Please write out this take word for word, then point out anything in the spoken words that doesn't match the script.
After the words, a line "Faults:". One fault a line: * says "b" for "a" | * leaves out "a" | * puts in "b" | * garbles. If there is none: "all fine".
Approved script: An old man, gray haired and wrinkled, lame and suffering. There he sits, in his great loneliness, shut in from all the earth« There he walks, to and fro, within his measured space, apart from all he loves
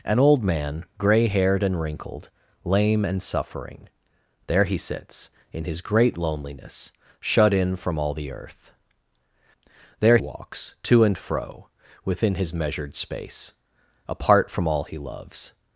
An old man, gray haired and wrinkled, lame and suffering. There he sits, in his great loneliness, shut in from all the earth« There walks, to and fro, within his measured space, apart from all he loves
Faults:
* leaves out "he"